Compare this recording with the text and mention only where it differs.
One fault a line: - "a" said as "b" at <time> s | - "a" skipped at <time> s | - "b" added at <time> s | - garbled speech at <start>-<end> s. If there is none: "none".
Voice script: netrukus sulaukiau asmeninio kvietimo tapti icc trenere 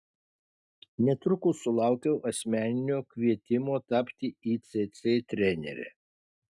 none